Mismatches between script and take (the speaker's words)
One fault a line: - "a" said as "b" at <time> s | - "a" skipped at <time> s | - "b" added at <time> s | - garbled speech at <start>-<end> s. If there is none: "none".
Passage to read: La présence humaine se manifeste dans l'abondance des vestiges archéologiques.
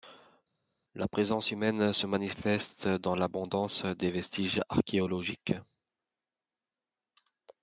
none